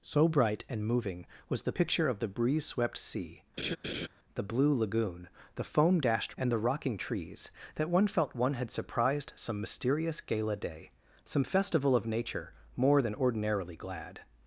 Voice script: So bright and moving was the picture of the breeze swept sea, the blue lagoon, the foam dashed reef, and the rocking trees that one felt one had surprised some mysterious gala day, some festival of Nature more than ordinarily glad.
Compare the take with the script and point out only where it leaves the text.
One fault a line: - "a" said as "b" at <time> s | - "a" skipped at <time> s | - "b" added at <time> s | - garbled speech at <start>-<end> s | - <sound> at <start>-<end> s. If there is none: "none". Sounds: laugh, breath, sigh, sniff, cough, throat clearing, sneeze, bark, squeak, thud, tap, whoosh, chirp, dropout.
- laugh at 3.6-4.1 s
- "reef" skipped at 6.3 s